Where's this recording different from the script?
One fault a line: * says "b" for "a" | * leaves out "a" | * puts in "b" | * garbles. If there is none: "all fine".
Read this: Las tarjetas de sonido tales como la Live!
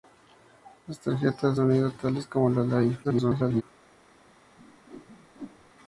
* leaves out "de"
* garbles